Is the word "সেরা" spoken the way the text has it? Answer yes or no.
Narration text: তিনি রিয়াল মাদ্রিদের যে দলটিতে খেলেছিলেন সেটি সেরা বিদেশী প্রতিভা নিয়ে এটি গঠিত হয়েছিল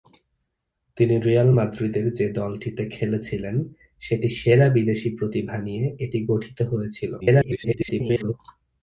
yes